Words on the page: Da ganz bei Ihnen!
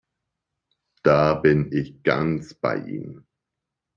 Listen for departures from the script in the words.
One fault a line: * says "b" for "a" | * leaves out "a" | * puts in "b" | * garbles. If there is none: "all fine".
* puts in "bin ich"